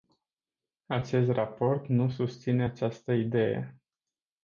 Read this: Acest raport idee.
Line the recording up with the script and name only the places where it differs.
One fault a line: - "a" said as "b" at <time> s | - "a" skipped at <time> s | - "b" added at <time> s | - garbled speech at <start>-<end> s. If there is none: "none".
- "nu susține această" added at 1.9 s